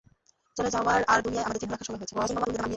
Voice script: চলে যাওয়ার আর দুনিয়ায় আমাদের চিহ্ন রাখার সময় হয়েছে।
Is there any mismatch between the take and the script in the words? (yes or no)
yes